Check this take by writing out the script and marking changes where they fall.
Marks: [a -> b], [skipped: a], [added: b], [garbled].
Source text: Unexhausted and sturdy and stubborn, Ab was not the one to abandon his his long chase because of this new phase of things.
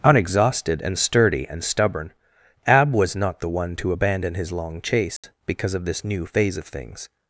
Unexhausted and sturdy and stubborn, Ab was not the one to abandon his [skipped: his] long chase because of this new phase of things.